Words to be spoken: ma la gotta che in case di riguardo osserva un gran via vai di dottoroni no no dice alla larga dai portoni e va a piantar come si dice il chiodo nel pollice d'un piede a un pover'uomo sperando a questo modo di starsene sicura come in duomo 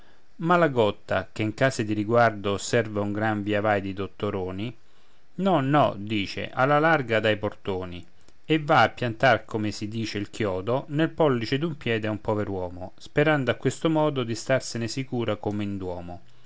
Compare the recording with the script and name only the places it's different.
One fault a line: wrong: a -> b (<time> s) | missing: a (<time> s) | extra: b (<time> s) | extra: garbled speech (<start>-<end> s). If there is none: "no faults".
no faults